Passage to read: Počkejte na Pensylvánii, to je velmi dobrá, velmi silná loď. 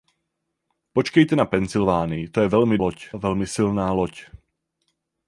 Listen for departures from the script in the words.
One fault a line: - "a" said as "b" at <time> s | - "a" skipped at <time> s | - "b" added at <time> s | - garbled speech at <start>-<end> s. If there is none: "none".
- "dobrá" said as "loď" at 2.8 s